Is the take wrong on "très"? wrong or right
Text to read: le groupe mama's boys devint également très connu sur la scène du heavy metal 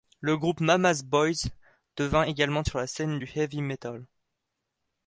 wrong